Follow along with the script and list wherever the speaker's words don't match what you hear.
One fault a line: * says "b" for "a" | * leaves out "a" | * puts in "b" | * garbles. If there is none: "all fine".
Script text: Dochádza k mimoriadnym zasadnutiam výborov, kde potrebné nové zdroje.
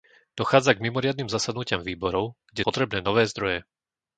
all fine